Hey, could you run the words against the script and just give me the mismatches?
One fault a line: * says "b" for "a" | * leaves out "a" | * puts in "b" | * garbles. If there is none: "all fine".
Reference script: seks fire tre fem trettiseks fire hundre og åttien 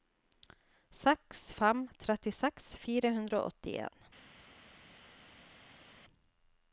* leaves out "fire tre"